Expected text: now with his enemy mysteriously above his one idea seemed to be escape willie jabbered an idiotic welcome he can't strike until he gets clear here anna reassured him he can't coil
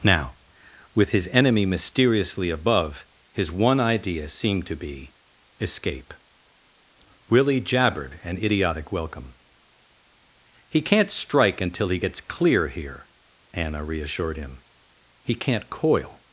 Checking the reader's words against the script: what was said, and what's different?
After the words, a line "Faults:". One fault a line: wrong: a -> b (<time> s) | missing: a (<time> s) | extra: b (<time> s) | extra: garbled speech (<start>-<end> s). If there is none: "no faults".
now with his enemy mysteriously above his one idea seemed to be escape willie jabbered an idiotic welcome he can't strike until he gets clear here anna reassured him he can't coil
Faults:
no faults